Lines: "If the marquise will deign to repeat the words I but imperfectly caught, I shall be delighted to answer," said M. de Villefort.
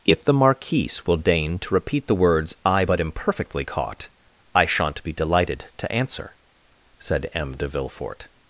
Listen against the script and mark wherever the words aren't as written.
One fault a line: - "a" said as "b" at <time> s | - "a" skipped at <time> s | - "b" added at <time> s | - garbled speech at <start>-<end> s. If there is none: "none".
- "shall" said as "shan't" at 4.7 s